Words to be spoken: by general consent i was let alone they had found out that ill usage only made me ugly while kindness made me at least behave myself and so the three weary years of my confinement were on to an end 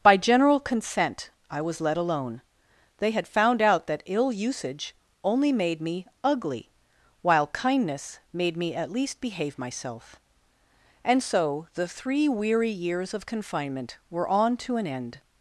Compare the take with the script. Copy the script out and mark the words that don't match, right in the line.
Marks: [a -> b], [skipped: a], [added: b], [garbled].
by general consent i was let alone they had found out that ill usage only made me ugly while kindness made me at least behave myself and so the three weary years of [skipped: my] confinement were on to an end